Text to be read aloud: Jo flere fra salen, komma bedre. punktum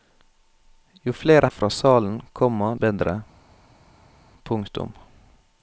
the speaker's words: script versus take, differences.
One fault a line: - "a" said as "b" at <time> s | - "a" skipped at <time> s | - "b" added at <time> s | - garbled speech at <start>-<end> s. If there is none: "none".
none